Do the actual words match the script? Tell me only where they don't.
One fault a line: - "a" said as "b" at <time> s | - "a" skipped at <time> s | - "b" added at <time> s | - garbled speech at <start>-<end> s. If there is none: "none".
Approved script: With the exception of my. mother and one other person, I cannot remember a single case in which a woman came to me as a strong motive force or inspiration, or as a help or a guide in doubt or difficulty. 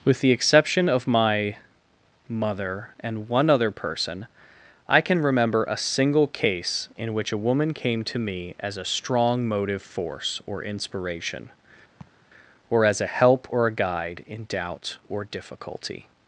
- "cannot" said as "can" at 5.0 s